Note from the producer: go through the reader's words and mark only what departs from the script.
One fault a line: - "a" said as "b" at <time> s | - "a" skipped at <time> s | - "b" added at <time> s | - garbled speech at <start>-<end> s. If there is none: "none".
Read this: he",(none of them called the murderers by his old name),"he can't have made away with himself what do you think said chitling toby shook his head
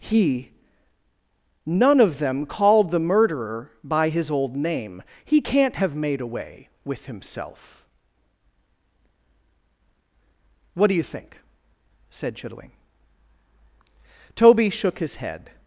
- "murderers" said as "murderer" at 3.0 s